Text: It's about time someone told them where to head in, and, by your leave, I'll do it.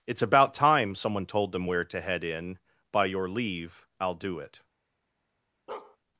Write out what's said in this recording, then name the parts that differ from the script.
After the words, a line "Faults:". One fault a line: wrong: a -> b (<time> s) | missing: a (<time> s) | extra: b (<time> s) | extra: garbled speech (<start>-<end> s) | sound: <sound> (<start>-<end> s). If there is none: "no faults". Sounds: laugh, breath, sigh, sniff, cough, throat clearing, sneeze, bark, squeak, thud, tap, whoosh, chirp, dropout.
It's about time someone told them where to head in, by your leave, I'll do it.
Faults:
missing: and (2.6 s)
sound: bark (5.7-6.0 s)